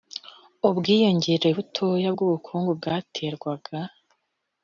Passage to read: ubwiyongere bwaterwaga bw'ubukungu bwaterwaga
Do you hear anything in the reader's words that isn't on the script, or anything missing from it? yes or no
yes